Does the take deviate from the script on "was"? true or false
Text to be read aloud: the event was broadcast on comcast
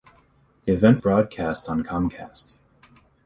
true